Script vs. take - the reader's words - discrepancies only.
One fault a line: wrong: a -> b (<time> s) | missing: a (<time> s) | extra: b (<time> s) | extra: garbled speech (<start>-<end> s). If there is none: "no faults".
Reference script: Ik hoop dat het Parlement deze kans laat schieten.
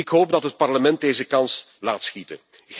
no faults